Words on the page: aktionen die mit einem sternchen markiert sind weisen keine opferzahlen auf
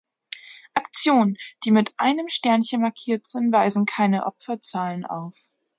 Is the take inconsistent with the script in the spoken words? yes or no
no